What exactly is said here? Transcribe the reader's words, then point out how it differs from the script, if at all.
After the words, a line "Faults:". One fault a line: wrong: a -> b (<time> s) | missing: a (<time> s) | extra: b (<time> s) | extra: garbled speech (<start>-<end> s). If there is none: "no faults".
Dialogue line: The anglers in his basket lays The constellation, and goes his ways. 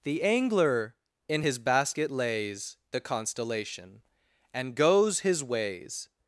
The angler in his basket lays The constellation, and goes his ways.
Faults:
wrong: anglers -> angler (0.2 s)